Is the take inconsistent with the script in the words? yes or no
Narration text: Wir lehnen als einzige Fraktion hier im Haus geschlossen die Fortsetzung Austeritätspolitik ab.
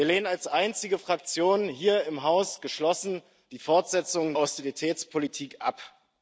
no